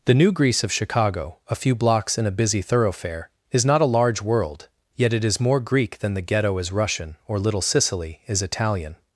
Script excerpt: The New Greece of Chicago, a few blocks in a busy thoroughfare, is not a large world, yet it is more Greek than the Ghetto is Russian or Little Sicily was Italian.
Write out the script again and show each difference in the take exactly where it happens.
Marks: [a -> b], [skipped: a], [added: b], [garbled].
The New Greece of Chicago, a few blocks in a busy thoroughfare, is not a large world, yet it is more Greek than the Ghetto is Russian or Little Sicily [was -> is] Italian.